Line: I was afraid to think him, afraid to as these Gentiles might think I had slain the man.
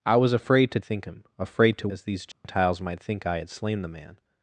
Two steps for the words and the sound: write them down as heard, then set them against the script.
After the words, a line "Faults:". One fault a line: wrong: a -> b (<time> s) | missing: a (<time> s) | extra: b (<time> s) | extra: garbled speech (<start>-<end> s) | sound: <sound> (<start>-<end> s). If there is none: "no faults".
I was afraid to think him, afraid to as these Gentiles might think I had slain the man.
Faults:
sound: dropout (2.3-2.4 s)